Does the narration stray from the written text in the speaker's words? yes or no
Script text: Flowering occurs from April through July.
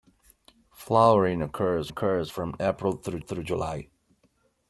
yes